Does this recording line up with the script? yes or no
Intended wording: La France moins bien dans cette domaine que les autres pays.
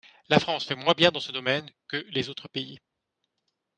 no